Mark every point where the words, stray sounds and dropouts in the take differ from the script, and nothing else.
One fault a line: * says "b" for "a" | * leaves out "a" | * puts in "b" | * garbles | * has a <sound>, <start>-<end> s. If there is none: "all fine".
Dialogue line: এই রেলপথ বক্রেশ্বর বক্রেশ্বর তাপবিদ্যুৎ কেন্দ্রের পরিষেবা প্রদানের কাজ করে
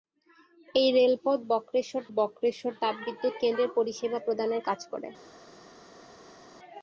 all fine